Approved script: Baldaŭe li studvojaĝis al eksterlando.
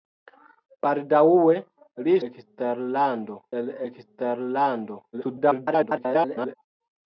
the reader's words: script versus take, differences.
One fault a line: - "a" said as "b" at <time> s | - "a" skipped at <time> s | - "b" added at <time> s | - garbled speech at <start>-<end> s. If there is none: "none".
- "studvojaĝis" said as "eksterlando" at 2.3 s
- garbled speech at 5.1-6.6 s